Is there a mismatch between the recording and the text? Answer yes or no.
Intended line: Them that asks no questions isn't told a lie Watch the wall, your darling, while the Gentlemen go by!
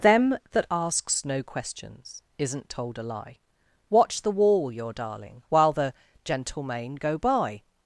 no